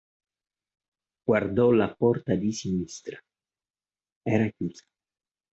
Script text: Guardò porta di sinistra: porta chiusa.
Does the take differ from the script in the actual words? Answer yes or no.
yes